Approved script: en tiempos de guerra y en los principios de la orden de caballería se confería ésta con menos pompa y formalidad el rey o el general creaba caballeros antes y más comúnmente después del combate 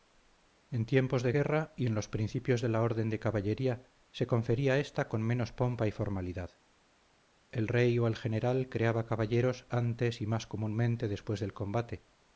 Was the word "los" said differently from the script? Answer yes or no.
no